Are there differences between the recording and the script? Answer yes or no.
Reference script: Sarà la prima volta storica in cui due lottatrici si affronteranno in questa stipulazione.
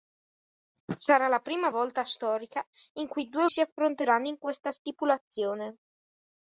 yes